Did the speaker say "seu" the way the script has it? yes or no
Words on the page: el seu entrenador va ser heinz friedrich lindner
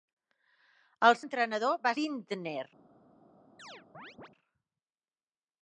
no